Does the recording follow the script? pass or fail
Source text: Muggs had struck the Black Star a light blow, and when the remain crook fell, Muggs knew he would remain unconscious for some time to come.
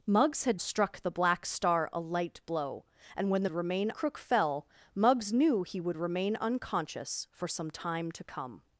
pass